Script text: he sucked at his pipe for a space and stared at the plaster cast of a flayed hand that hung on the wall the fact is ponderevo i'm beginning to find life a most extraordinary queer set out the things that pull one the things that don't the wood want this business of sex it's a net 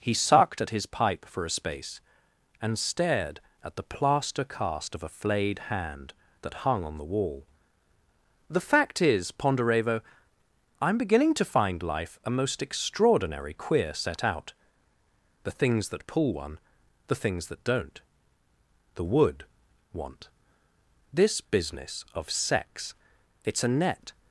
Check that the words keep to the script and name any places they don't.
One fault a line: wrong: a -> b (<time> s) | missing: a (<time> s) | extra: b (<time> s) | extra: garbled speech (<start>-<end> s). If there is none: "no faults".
no faults